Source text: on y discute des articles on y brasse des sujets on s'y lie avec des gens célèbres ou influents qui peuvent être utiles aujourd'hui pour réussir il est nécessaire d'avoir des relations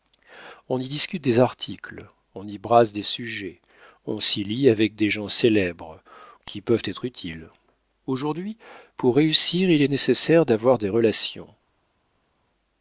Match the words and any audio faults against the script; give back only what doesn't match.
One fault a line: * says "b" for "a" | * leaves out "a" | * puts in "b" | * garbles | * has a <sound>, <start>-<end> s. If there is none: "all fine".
* leaves out "ou influents"